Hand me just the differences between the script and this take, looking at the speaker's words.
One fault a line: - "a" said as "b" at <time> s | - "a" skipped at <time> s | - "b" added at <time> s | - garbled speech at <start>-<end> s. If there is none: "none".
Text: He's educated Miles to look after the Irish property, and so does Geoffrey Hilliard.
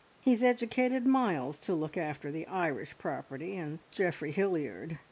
- "so does" skipped at 3.8 s